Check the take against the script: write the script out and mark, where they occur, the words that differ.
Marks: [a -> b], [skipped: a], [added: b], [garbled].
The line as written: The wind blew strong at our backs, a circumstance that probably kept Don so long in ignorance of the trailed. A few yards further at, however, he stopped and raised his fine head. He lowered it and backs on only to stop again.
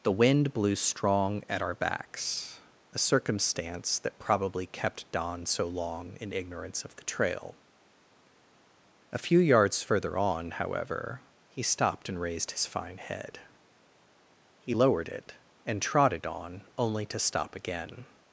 The wind blew strong at our backs, a circumstance that probably kept Don so long in ignorance of the [trailed. -> trail] A few yards further [at, -> on] however, he stopped and raised his fine head. He lowered it and [backs -> trotted] on only to stop again.